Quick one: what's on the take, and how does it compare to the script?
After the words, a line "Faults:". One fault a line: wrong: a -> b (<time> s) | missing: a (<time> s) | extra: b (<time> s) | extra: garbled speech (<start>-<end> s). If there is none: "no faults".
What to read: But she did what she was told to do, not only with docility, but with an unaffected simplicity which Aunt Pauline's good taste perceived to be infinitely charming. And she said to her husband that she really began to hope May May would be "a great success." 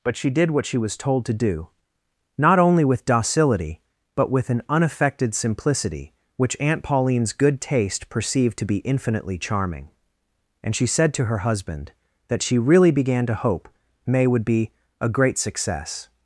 But she did what she was told to do, not only with docility, but with an unaffected simplicity which Aunt Pauline's good taste perceived to be infinitely charming. And she said to her husband that she really began to hope May would be "a great success."
Faults:
missing: May (14.2 s)